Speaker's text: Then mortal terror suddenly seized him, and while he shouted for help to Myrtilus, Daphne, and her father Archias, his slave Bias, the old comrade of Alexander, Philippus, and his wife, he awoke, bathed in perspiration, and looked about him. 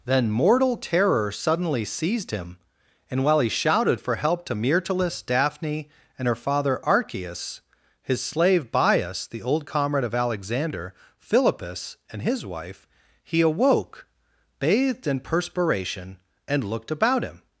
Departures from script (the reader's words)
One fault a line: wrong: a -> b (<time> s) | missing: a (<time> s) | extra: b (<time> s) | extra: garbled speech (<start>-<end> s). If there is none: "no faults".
no faults